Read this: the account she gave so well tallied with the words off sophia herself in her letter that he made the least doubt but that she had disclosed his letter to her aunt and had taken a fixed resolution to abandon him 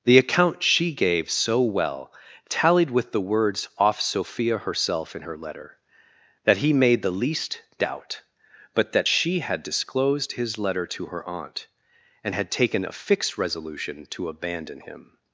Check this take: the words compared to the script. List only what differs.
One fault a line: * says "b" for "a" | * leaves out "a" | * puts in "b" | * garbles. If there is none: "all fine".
all fine